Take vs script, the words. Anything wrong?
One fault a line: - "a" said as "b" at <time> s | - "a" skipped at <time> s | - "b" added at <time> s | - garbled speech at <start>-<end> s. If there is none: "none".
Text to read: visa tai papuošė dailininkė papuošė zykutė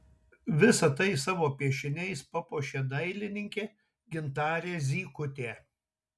- "savo piešiniais" added at 1.2 s
- "papuošė" said as "gintarė" at 4.2 s